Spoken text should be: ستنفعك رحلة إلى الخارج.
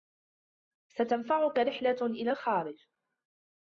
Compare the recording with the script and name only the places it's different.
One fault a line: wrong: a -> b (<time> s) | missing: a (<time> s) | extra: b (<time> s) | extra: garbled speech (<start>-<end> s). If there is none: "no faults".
no faults